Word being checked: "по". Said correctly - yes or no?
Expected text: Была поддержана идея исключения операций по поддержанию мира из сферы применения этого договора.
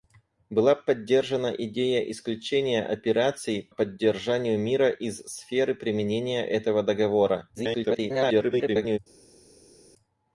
no